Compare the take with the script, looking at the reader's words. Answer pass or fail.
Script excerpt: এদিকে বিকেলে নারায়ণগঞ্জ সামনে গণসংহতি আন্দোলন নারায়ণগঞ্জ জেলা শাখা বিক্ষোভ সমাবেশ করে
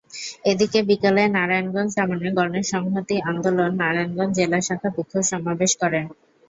pass